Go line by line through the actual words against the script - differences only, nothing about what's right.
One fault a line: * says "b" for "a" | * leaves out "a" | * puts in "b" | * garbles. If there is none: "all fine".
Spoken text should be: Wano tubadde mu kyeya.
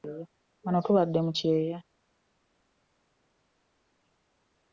all fine